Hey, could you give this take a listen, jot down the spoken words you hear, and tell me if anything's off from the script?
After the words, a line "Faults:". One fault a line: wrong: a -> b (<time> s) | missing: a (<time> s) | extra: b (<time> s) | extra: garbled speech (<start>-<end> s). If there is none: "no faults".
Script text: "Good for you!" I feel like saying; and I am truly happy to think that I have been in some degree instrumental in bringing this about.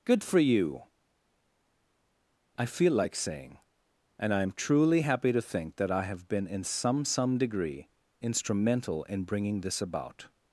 "Good for you!" I feel like saying; and I am truly happy to think that I have been in some some degree instrumental in bringing this about.
Faults:
extra: some (7.0 s)